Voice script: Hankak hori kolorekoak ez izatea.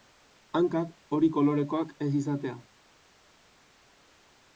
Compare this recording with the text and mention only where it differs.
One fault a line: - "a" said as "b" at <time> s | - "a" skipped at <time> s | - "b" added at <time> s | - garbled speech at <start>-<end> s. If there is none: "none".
none